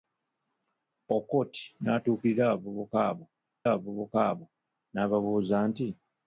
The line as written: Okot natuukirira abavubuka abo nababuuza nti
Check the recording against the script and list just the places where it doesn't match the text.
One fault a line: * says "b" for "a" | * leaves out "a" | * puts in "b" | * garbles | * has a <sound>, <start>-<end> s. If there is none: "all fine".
* puts in "abavubuka abo"